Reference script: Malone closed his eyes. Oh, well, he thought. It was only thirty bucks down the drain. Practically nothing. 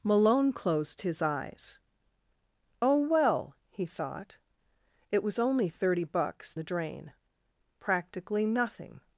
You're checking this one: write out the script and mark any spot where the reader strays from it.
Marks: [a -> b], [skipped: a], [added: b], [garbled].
Malone closed his eyes. Oh, well, he thought. It was only thirty bucks [skipped: down] the drain. Practically nothing.